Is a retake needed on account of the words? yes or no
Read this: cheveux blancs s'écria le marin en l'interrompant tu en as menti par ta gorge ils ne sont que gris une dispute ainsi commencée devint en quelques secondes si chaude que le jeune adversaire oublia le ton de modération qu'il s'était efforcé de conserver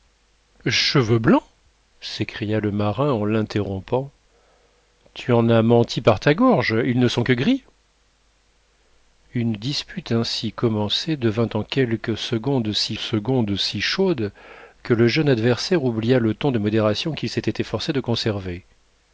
yes